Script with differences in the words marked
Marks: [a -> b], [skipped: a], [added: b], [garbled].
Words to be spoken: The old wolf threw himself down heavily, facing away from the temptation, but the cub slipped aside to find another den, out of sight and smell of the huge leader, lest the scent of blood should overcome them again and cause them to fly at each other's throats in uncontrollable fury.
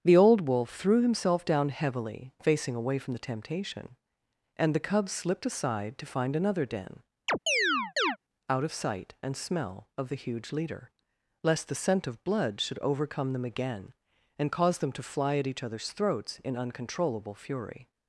The old wolf threw himself down heavily, facing away from the temptation, [but -> and] the cub slipped aside to find another den, out of sight and smell of the huge leader, lest the scent of blood should overcome them again and cause them to fly at each other's throats in uncontrollable fury.